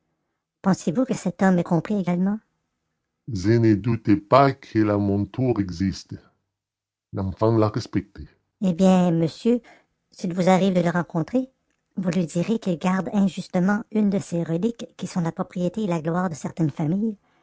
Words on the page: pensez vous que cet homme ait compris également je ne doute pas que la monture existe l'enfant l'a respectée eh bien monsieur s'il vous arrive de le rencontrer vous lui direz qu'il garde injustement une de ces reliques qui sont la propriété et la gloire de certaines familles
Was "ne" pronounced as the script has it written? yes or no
yes